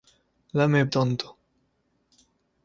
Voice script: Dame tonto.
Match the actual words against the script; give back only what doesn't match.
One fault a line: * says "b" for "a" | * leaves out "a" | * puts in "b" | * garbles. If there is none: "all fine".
all fine